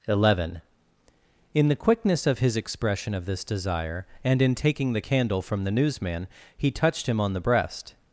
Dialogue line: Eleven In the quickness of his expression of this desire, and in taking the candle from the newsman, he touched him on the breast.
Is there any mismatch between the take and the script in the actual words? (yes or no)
no